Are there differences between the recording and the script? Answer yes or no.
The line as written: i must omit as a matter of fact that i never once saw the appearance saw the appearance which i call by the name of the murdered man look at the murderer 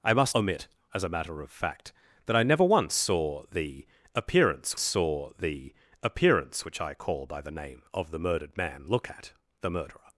no